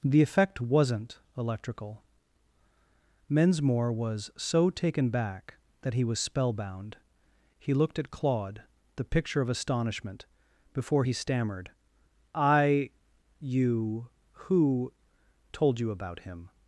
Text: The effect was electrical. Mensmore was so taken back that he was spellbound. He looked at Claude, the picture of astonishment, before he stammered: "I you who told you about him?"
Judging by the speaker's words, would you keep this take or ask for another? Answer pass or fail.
fail